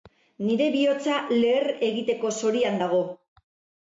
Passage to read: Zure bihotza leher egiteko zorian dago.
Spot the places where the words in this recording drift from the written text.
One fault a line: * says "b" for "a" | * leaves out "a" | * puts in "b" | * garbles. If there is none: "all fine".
* says "Nire" for "Zure"